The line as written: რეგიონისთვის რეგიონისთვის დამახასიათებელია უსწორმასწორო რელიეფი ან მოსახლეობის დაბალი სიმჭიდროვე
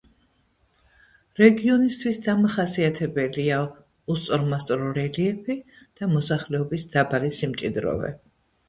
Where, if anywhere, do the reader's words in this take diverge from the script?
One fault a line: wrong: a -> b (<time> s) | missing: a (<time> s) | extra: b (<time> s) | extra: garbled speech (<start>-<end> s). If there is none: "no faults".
missing: რეგიონისთვის (2.2 s)
wrong: ან -> და (5.8 s)